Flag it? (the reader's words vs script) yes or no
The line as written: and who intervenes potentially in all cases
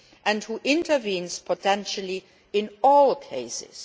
no